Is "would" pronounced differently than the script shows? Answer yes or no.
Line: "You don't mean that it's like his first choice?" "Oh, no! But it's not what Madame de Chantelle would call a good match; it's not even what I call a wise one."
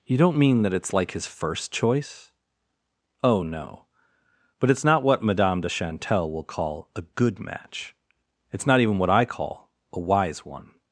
yes